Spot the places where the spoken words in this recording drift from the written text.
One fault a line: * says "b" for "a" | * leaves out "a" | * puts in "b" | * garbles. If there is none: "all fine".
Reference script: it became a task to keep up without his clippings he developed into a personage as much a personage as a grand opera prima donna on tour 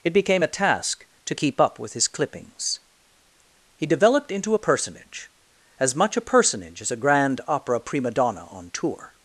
* says "with" for "without"